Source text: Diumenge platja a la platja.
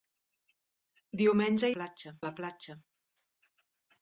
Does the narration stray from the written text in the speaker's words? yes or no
no